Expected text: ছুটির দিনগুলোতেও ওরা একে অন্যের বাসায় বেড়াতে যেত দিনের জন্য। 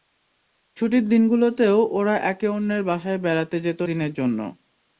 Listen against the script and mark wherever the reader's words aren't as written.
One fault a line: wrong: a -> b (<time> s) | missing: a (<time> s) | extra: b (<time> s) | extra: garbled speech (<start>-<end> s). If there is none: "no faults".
no faults